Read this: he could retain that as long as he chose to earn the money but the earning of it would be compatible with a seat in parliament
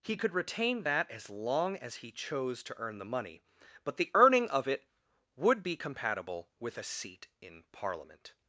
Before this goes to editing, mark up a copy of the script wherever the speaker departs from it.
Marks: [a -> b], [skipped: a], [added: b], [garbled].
he could retain that as long as he chose to earn the money but the earning of it would be compatible with a seat in parliament